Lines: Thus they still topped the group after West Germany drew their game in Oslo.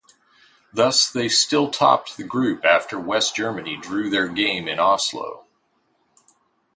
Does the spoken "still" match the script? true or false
true